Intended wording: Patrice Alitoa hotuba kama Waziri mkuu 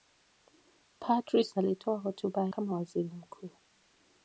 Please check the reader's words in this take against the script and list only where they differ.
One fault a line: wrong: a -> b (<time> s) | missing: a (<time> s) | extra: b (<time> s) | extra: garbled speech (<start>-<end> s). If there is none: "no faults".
no faults